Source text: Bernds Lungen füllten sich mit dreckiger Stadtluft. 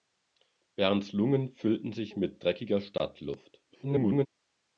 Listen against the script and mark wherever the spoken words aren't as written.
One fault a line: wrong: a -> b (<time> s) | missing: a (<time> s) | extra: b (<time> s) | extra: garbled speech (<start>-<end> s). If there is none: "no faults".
extra: garbled speech (3.7-4.3 s)